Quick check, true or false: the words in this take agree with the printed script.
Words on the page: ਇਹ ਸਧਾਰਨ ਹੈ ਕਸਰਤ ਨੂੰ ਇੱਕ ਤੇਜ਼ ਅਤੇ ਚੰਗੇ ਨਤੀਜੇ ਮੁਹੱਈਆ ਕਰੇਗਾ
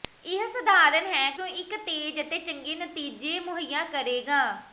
false